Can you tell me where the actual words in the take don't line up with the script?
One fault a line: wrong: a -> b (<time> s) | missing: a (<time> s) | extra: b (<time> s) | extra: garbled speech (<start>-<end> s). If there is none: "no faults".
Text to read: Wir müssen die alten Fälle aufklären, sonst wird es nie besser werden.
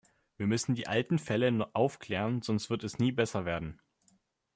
no faults